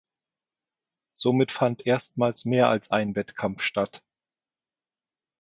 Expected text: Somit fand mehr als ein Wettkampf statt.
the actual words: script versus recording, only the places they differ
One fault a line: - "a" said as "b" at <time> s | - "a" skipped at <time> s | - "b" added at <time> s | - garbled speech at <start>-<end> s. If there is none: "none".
- "erstmals" added at 1.9 s